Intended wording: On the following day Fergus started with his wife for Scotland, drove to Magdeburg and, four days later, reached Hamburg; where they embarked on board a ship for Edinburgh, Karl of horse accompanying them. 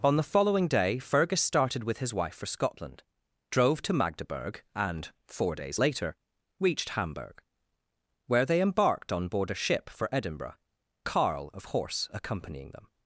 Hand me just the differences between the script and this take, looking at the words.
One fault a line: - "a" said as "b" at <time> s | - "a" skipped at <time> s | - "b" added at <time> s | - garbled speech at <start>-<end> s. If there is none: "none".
none